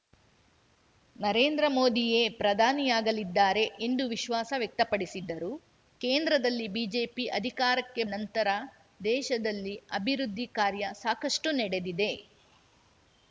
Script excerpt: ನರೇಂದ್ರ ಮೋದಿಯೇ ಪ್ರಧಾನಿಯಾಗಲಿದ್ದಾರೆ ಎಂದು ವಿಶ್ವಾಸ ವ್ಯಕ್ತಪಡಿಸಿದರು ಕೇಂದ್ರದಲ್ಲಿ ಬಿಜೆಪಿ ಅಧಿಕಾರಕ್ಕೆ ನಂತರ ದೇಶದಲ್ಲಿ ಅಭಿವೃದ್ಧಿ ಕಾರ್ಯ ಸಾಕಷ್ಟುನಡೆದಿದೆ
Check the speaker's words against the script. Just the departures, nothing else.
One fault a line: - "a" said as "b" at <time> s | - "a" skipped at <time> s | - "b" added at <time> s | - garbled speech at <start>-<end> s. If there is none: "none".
none